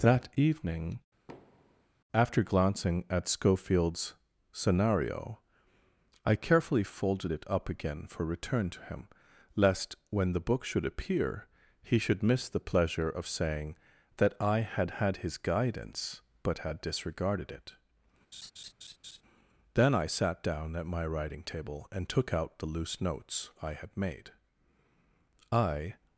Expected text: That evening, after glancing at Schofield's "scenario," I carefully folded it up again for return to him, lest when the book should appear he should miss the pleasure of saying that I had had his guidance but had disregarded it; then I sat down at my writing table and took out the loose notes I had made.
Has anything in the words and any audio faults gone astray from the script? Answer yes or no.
yes